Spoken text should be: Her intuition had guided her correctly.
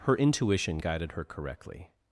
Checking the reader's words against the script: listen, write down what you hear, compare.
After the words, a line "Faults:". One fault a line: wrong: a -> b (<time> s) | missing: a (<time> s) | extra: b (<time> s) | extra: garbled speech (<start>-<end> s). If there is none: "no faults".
Her intuition guided her correctly.
Faults:
missing: had (0.8 s)